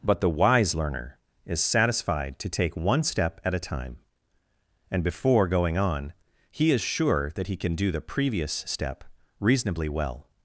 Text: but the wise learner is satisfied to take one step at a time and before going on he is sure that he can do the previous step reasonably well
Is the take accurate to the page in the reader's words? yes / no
yes